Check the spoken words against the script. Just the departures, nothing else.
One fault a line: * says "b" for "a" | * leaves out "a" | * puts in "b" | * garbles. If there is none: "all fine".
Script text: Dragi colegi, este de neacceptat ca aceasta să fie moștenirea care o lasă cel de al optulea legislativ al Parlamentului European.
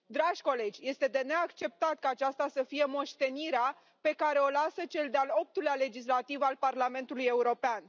* puts in "pe"